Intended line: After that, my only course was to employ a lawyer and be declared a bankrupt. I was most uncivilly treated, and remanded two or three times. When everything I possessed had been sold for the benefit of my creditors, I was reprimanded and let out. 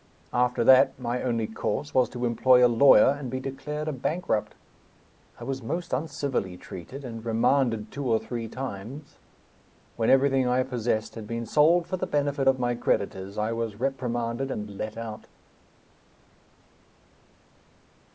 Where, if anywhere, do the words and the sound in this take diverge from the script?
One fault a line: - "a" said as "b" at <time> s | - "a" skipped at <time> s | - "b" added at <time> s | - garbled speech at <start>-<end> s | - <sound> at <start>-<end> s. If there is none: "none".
none